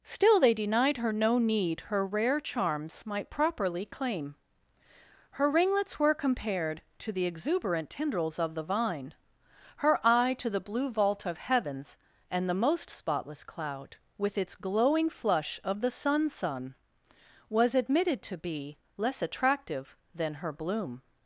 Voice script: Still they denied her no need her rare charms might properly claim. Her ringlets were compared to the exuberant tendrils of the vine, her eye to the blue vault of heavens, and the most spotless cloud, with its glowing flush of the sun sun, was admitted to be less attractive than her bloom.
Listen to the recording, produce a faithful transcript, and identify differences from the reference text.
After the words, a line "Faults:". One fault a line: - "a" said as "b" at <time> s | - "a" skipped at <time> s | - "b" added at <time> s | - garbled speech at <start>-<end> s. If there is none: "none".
Still they denied her no need her rare charms might properly claim. Her ringlets were compared to the exuberant tendrils of the vine, her eye to the blue vault of heavens, and the most spotless cloud, with its glowing flush of the sun sun, was admitted to be less attractive than her bloom.
Faults:
none